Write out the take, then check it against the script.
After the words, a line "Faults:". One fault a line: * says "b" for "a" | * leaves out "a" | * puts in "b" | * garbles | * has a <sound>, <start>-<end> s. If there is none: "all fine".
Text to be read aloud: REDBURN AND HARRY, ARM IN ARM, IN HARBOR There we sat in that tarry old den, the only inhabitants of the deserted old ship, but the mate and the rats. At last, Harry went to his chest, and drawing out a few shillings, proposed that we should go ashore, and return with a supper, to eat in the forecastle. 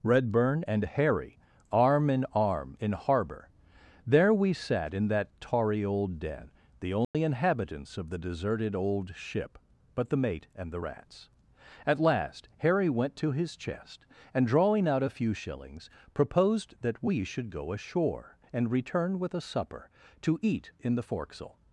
REDBURN AND HARRY, ARM IN ARM, IN HARBOR There we sat in that tarry old den, the only inhabitants of the deserted old ship, but the mate and the rats. At last, Harry went to his chest, and drawing out a few shillings, proposed that we should go ashore, and return with a supper, to eat in the forecastle.
Faults:
* has a dropout, 7.0-7.1 s